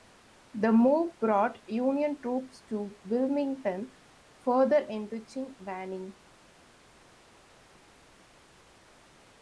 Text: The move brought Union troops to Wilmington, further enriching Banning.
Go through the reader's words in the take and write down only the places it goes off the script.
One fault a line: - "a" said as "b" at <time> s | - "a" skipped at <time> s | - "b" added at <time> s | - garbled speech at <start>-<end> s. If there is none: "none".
none